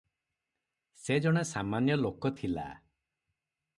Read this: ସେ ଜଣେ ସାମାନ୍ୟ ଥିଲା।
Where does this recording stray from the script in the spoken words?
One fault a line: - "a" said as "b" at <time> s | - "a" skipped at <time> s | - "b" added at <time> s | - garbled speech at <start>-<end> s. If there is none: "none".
- "ଲୋକ" added at 2.0 s